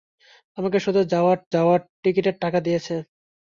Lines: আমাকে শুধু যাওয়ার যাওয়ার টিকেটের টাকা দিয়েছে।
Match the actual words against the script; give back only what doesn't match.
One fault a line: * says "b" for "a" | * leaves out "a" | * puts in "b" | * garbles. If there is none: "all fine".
all fine